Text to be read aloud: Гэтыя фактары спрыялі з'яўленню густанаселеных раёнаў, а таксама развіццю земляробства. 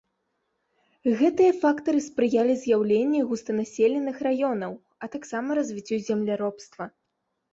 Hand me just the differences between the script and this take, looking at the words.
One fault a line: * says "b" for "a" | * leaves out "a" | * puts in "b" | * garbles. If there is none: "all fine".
all fine